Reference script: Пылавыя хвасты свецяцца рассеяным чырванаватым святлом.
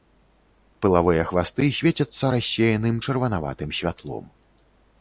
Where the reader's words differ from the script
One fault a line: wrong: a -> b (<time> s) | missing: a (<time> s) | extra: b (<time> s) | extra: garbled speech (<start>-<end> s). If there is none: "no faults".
no faults